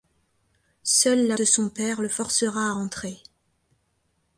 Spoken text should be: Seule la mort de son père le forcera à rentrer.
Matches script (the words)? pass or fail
fail